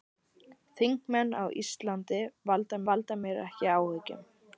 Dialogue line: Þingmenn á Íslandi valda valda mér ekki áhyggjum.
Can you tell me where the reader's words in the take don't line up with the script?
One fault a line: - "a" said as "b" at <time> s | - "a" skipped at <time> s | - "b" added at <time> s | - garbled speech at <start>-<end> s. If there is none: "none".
none